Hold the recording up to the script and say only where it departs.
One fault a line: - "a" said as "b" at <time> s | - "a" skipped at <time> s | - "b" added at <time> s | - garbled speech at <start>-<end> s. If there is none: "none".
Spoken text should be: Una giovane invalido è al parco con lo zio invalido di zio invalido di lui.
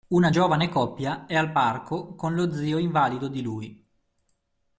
- "invalido" said as "coppia" at 0.7 s
- "zio invalido di" skipped at 3.4 s